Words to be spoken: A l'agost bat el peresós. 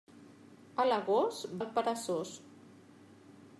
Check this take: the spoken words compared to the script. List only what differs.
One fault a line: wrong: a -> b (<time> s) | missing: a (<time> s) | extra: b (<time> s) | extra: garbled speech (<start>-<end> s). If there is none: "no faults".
missing: bat (1.5 s)